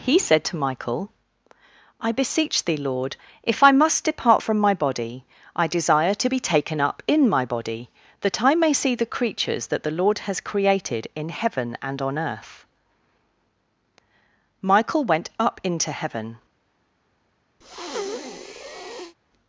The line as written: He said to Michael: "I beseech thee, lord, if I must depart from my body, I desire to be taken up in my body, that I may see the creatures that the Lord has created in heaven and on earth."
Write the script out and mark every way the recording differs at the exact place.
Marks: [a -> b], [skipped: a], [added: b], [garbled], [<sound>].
He said to Michael: "I beseech thee, lord, if I must depart from my body, I desire to be taken up in my body, that I may see the creatures that the Lord has created in heaven and on earth." [added: Michael went up into heaven] [breath]